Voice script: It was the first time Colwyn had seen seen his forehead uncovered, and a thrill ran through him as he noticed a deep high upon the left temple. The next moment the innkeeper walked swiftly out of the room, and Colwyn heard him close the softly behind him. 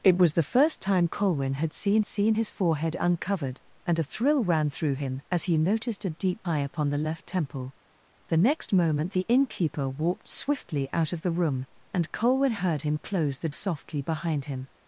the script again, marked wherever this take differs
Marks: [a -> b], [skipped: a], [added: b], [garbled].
It was the first time Colwyn had seen seen his forehead uncovered, and a thrill ran through him as he noticed a deep high upon the left temple. The next moment the innkeeper walked swiftly out of the room, and Colwyn heard him close the softly behind him.